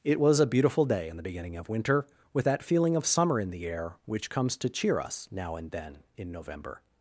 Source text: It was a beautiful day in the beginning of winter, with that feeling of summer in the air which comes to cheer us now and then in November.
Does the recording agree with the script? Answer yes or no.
yes